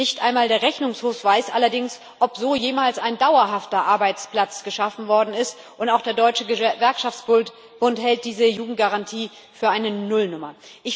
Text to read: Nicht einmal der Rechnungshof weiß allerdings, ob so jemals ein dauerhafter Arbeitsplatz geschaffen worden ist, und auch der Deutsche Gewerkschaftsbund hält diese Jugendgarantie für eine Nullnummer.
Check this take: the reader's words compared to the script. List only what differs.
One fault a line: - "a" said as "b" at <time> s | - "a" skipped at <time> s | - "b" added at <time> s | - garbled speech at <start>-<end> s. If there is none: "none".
none